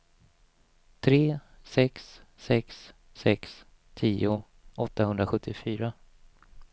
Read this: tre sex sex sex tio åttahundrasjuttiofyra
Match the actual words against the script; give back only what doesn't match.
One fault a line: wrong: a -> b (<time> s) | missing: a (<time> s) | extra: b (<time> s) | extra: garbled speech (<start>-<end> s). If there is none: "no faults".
no faults